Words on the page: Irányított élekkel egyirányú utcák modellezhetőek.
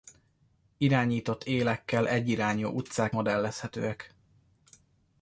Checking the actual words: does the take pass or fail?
pass